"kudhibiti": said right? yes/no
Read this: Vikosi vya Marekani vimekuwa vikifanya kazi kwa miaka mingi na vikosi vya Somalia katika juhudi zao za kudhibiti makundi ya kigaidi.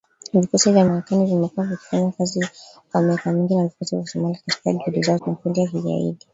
no